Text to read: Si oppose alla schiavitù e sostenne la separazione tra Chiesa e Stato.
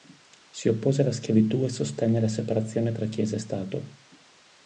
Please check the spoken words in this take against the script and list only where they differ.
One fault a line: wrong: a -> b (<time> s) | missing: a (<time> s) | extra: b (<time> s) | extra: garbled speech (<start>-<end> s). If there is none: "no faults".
no faults